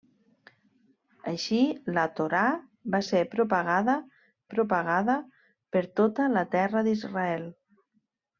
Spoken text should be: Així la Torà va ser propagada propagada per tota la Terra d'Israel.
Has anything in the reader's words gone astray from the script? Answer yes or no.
no